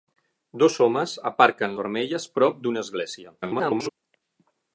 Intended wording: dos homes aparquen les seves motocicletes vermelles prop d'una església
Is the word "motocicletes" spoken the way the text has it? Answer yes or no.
no